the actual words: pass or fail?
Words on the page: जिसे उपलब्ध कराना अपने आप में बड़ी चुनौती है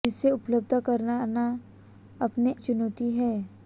fail